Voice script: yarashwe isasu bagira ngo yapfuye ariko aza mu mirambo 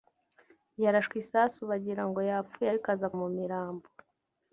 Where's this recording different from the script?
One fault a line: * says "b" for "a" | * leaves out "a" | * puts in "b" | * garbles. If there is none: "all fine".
all fine